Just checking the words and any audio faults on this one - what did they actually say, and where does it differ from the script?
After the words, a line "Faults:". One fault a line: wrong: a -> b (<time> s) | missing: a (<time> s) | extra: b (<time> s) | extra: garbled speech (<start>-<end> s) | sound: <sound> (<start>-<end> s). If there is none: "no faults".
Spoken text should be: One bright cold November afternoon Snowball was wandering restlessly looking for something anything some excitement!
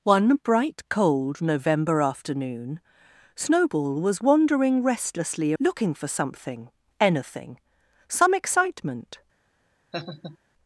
One bright cold November afternoon Snowball was wandering restlessly looking for something anything some excitement!
Faults:
sound: laugh (9.9-10.4 s)